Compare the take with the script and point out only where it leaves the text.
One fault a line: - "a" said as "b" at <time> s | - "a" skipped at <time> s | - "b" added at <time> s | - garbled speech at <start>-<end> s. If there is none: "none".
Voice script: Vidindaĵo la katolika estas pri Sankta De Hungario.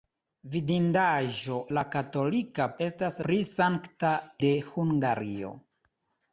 none